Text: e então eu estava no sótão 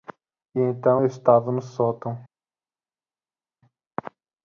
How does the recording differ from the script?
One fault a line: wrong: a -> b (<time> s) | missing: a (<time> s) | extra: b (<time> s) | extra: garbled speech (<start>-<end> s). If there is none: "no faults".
no faults